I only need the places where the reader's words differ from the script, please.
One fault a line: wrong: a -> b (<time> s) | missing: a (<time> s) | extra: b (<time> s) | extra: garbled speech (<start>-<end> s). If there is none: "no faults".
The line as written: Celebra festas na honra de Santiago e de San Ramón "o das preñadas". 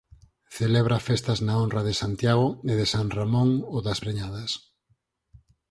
no faults